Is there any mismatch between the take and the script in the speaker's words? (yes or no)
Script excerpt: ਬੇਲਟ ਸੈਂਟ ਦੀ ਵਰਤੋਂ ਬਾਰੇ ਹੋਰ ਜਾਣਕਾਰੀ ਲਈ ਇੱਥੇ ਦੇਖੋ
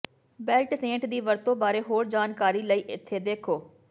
no